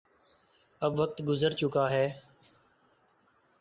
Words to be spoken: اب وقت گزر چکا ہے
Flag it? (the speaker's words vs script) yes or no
no